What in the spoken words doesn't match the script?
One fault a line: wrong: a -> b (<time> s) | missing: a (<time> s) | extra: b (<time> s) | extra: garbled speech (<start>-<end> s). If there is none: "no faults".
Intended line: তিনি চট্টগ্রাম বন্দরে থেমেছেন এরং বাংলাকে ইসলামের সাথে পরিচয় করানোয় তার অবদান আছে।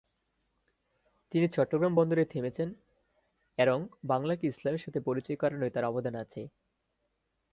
no faults